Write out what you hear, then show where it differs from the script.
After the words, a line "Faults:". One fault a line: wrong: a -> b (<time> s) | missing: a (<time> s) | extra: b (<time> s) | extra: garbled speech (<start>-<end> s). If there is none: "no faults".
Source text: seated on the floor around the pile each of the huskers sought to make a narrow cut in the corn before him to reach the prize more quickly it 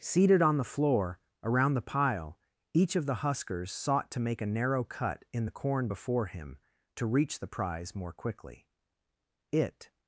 seated on the floor around the pile each of the huskers sought to make a narrow cut in the corn before him to reach the prize more quickly it
Faults:
no faults